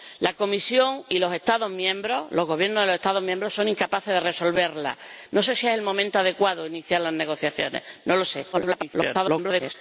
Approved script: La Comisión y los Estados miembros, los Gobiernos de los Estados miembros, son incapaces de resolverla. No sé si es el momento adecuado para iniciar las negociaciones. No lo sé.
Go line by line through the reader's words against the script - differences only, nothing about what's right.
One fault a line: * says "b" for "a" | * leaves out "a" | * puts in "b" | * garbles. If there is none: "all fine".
* garbles